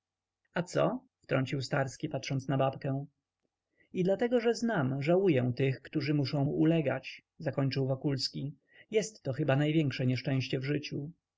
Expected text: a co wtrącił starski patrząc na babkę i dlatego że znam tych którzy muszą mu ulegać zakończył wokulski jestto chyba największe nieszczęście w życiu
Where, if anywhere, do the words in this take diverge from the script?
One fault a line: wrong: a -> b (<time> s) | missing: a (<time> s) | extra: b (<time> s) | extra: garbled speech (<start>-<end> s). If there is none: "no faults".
extra: żałuję (5.0 s)